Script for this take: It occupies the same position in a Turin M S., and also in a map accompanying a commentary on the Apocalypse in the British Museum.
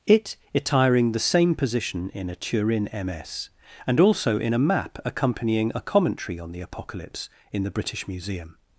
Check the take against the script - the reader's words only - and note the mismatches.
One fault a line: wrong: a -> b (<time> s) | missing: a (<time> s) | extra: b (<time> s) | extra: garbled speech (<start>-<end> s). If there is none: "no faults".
wrong: occupies -> attiring (0.6 s)